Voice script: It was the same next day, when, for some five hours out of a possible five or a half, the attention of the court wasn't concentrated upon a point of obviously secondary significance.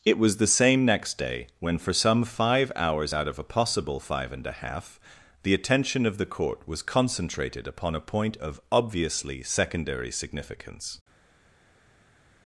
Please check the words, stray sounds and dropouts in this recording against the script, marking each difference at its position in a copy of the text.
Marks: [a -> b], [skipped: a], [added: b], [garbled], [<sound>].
It was the same next day, when, for some five hours out of a possible five [or -> and] a half, the attention of the court [wasn't -> was] concentrated upon a point of obviously secondary significance.